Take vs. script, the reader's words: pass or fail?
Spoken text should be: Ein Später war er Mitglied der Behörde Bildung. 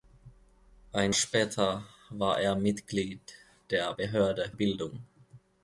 pass